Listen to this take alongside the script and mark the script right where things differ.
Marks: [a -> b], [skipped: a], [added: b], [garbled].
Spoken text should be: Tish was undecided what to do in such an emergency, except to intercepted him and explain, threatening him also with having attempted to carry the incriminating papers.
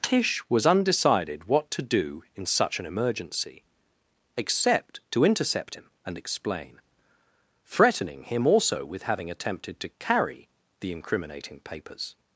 Tish was undecided what to do in such an emergency, except to [intercepted -> intercept] him and explain, threatening him also with having attempted to carry the incriminating papers.